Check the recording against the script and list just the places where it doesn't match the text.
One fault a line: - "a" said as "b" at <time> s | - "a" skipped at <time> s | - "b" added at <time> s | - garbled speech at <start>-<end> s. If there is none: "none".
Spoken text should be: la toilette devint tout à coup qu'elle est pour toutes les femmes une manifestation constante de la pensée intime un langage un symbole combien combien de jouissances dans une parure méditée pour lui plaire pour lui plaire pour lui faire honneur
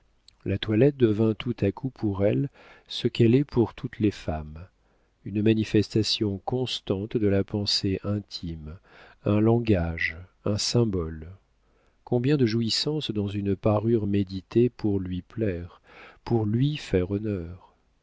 - "pour elle ce" added at 1.9 s
- "combien" skipped at 12.4 s
- "plaire pour lui" skipped at 16.8 s